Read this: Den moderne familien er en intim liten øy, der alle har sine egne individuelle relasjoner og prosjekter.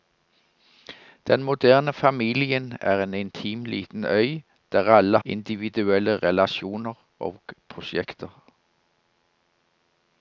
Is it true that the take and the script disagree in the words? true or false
true